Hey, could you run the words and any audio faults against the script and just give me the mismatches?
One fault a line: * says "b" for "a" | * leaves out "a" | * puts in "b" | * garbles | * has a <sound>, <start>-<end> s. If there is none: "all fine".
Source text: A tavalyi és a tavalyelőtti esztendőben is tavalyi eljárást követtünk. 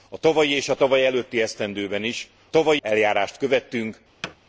* has a thud, 4.2-4.4 s